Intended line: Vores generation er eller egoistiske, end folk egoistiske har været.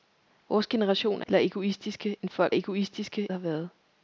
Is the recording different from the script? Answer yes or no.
no